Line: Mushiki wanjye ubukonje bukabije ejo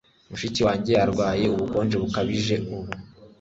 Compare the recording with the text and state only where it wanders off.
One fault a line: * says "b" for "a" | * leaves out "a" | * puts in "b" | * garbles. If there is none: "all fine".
* puts in "arwaye"
* says "ubu" for "ejo"